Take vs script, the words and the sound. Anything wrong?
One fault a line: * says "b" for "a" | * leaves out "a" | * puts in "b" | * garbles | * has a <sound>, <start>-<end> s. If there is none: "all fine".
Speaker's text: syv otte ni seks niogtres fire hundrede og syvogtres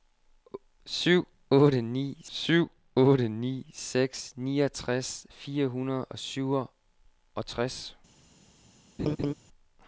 * puts in "syv otte ni"
* has a laugh, 9.0-9.3 s